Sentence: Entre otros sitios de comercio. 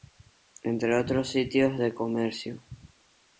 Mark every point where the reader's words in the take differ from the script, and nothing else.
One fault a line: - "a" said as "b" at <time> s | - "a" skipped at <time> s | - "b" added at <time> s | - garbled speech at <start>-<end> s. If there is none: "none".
none